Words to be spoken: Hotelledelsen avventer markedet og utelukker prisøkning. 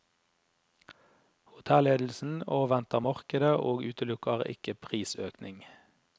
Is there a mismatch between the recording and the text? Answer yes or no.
yes